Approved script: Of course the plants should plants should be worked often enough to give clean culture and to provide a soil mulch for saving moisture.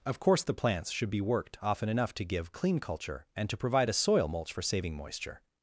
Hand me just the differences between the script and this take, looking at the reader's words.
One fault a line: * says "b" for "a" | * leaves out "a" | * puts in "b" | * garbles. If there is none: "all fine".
* leaves out "plants should"